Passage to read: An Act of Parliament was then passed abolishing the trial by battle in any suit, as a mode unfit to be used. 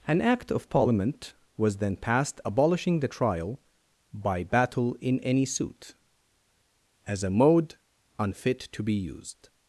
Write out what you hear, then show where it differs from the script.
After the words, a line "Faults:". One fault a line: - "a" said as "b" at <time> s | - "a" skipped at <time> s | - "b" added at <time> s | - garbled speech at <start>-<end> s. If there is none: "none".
An Act of Parliament was then passed abolishing the trial by battle in any suit, as a mode unfit to be used.
Faults:
none